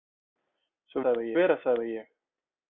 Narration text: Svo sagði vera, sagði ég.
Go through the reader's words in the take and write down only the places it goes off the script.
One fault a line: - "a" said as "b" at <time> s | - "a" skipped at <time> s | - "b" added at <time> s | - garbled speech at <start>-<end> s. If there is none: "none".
none